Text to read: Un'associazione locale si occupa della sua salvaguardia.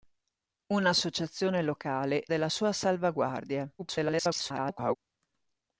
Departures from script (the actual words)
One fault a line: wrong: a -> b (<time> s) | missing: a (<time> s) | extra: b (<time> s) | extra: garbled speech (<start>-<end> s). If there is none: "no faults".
missing: si occupa (2.2 s)
extra: garbled speech (3.8-5.0 s)